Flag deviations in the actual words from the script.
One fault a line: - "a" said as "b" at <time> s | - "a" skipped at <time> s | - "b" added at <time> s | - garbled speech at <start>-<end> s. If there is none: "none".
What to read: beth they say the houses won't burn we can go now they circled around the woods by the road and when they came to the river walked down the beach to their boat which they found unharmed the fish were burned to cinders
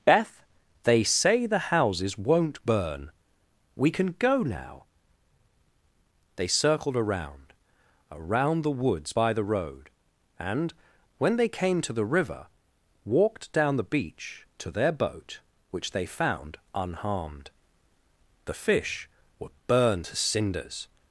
- "around" added at 8.1 s